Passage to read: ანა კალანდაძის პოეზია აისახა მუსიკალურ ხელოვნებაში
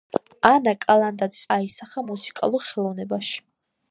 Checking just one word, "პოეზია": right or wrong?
wrong